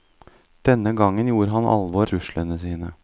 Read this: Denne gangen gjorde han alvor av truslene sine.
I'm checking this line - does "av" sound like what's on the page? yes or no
no